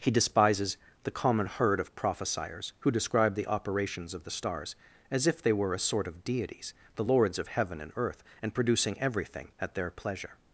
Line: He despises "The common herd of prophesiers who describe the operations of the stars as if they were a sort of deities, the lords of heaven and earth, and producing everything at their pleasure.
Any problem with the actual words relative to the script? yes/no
no